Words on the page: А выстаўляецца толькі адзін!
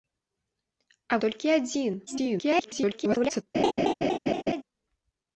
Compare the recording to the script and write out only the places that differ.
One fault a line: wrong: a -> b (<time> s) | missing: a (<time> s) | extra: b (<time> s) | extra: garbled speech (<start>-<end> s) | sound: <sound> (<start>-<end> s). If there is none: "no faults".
missing: выстаўляецца (1.2 s)
extra: garbled speech (2.1-3.4 s)
sound: laugh (3.5-4.6 s)